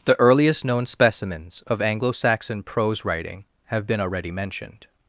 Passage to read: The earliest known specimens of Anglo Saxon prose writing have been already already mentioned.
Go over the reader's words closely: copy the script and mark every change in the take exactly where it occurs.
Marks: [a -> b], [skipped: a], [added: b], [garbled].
The earliest known specimens of Anglo Saxon prose writing have been already [skipped: already] mentioned.